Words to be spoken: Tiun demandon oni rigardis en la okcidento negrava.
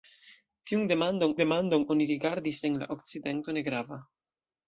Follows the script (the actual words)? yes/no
no